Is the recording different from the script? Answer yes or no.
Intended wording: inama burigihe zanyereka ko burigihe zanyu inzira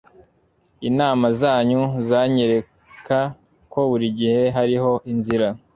yes